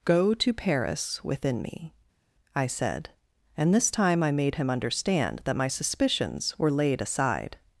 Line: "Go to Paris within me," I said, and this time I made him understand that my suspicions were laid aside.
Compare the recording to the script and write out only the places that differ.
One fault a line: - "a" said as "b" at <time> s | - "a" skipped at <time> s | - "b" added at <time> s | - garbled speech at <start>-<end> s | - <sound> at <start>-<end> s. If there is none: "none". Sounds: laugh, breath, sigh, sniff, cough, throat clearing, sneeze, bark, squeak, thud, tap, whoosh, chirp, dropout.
none